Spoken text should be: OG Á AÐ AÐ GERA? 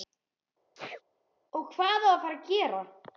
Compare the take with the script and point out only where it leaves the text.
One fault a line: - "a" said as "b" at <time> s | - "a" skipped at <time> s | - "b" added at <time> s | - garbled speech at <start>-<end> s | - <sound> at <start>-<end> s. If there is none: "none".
- sneeze at 0.8-1.0 s
- "HVAÐ" added at 1.8 s
- "FARA" added at 2.2 s